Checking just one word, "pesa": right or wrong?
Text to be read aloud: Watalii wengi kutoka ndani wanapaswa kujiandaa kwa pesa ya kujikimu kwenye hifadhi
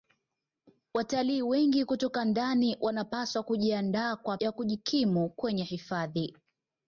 wrong